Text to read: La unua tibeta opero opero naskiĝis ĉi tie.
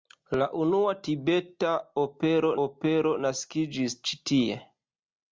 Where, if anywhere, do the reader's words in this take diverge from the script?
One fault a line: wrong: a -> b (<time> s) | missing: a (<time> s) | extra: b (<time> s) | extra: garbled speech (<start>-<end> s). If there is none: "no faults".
no faults